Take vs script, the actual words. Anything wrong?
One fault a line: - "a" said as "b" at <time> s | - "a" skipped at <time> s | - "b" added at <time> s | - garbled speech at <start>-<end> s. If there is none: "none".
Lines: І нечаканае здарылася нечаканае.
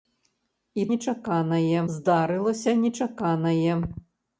none